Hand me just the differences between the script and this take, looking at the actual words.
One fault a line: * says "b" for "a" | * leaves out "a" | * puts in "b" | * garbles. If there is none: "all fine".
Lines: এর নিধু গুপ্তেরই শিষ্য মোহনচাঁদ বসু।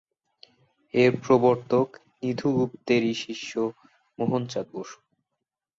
* puts in "প্রবর্তক"